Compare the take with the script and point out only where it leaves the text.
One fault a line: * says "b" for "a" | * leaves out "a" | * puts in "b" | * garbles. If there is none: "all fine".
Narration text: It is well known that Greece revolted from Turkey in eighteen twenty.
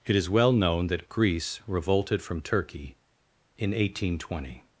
all fine